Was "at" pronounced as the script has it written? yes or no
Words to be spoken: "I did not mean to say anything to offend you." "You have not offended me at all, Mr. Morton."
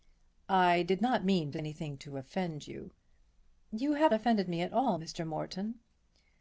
yes